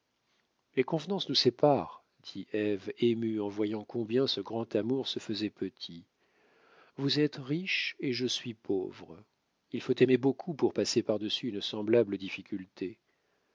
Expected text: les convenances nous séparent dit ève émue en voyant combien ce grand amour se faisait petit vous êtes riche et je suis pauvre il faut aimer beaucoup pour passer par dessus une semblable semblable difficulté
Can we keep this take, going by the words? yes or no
no